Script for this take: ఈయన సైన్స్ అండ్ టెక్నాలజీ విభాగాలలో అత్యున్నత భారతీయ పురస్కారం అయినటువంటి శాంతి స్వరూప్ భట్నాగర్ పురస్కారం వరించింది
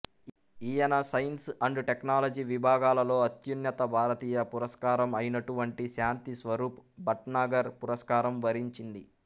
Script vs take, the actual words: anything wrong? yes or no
no